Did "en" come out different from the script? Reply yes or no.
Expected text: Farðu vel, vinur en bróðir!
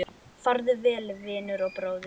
yes